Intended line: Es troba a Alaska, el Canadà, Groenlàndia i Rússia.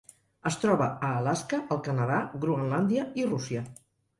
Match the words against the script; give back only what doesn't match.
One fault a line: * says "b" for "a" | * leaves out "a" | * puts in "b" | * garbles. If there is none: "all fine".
all fine